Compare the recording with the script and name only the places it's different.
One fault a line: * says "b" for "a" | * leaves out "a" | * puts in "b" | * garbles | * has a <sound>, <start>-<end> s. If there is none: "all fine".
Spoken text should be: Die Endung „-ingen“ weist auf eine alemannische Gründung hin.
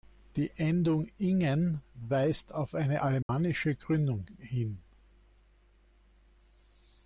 * has a dropout, 3.2-3.3 s